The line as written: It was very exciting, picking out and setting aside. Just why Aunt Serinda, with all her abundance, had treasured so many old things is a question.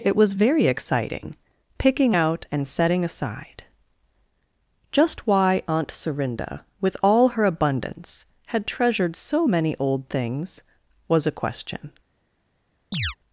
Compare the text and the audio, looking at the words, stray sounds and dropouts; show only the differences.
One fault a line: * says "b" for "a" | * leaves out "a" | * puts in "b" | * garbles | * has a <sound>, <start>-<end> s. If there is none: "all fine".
* says "was" for "is"
* has a chirp, 12.9-13.2 s